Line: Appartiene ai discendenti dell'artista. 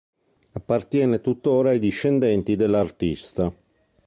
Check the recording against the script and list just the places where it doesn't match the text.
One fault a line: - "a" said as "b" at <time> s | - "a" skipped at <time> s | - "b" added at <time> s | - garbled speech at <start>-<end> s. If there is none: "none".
- "tuttora" added at 1.2 s